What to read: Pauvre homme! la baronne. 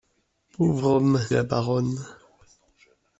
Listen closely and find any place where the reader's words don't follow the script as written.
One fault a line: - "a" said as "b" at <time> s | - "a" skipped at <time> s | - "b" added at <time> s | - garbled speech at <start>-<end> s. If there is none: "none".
none